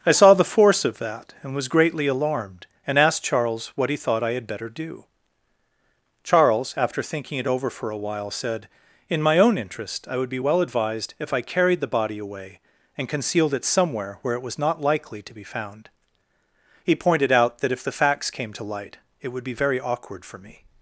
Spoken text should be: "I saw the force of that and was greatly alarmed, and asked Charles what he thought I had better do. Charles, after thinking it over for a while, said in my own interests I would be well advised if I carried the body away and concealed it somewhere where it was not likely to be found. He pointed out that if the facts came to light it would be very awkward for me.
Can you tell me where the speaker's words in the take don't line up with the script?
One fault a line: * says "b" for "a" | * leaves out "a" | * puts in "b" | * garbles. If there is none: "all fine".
* says "interest" for "interests"